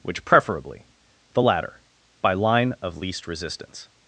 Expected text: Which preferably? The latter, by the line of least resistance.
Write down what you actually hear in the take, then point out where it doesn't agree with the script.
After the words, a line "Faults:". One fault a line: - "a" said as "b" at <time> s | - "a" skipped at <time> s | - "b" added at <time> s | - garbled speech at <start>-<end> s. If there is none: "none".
Which preferably? The latter, by line of least resistance.
Faults:
- "the" skipped at 2.3 s